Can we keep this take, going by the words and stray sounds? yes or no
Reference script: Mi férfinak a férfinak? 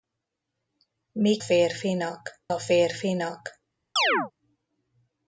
no